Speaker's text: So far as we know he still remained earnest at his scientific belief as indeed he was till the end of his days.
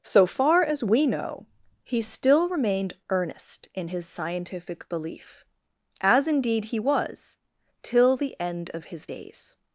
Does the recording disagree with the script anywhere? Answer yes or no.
yes